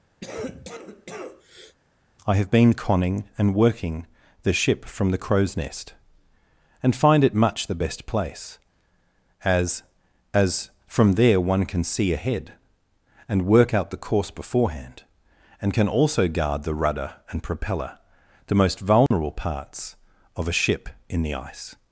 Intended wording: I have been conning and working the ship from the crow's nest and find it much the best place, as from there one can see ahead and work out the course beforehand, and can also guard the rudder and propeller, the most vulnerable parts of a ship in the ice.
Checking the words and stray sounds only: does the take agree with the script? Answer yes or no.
no